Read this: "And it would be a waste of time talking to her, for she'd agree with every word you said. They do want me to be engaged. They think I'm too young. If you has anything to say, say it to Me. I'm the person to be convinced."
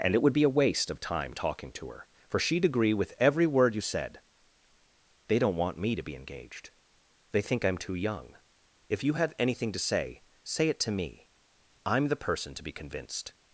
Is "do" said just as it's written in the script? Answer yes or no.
no